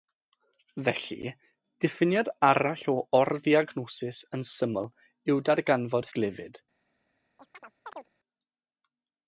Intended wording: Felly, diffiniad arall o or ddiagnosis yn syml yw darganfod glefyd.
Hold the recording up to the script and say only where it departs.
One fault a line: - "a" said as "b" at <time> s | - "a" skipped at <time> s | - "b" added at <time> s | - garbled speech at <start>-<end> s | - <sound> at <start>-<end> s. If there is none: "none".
- chirp at 7.4-8.1 s